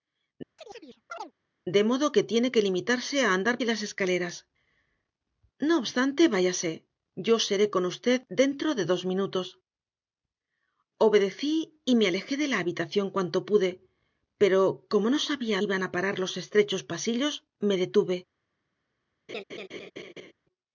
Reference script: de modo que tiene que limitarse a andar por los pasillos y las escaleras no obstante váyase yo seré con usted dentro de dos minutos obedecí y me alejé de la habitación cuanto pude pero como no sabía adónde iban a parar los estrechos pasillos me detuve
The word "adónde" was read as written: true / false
false